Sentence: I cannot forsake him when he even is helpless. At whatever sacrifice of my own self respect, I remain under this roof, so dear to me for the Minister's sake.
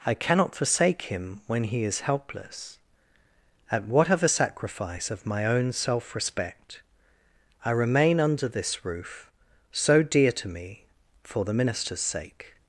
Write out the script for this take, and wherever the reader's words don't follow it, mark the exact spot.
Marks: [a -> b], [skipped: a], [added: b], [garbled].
I cannot forsake him when he [skipped: even] is helpless. At whatever sacrifice of my own self respect, I remain under this roof, so dear to me for the Minister's sake.